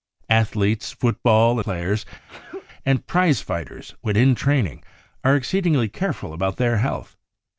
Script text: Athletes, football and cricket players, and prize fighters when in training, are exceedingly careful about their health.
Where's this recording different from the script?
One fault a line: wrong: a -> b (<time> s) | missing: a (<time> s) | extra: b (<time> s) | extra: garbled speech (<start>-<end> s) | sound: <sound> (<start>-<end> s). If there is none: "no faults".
missing: and cricket (1.6 s)
sound: sneeze (2.3-2.7 s)